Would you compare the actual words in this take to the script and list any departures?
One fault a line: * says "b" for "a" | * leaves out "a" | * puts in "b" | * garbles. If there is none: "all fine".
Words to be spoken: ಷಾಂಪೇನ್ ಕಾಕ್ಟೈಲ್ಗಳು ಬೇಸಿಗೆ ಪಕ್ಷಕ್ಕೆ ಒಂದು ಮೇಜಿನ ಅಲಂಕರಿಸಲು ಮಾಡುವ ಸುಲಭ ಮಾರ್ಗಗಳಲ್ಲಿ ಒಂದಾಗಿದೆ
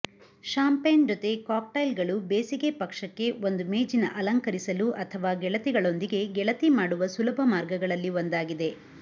* puts in "ಜೊತೆ"
* puts in "ಅಥವಾ ಗೆಳತಿಗಳೊಂದಿಗೆ ಗೆಳತಿ"